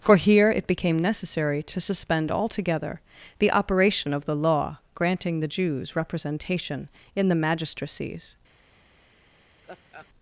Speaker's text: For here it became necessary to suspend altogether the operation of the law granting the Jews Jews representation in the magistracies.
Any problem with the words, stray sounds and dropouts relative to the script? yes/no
yes